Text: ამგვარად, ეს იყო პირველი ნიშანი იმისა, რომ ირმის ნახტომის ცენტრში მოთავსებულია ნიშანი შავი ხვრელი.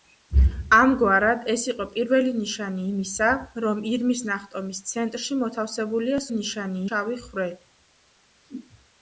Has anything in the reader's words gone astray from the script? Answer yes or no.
no